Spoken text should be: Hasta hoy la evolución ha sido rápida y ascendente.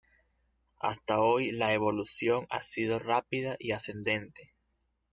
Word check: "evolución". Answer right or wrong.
right